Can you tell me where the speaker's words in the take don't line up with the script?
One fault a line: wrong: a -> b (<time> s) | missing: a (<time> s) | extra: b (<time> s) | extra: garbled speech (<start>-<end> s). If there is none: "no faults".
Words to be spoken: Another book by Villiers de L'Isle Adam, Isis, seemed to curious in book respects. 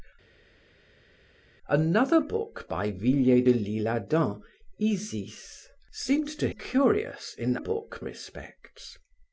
no faults